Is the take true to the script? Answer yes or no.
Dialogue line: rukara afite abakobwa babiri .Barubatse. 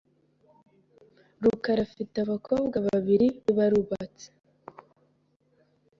yes